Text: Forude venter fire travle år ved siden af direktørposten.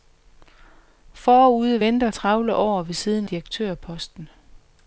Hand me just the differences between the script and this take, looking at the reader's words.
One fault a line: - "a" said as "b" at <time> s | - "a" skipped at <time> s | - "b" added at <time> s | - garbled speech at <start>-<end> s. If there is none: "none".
- "fire" skipped at 2.1 s
- "af" skipped at 3.3 s